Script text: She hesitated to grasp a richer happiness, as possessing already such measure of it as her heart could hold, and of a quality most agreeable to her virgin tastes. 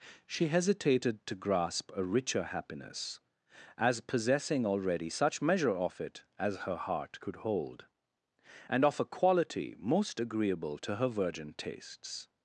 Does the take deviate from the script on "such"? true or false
false